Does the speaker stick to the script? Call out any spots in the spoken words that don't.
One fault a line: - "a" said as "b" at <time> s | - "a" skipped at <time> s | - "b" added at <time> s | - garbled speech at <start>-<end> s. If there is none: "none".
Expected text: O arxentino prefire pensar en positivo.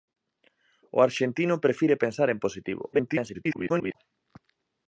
- garbled speech at 2.9-4.0 s